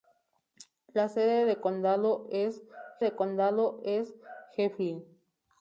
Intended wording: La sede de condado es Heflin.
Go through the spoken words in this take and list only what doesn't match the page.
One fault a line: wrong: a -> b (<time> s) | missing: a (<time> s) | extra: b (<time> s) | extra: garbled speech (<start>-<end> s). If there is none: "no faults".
extra: de condado es (3.0 s)